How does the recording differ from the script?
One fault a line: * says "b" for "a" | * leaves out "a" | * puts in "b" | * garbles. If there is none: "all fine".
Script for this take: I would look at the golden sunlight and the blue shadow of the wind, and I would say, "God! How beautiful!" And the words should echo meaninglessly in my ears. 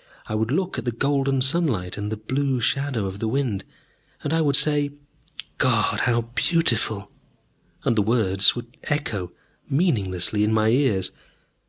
* says "would" for "should"